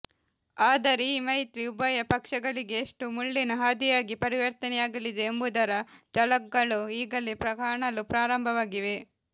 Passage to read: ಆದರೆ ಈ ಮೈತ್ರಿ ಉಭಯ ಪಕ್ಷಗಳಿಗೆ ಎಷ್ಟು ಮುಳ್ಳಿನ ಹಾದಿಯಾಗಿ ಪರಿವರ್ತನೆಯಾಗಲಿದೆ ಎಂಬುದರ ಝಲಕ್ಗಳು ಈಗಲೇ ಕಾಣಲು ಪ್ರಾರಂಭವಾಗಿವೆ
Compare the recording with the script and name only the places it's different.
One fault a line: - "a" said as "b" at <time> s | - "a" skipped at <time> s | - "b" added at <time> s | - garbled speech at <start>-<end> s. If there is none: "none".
none